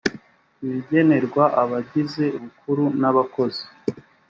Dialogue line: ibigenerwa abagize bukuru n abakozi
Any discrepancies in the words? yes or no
no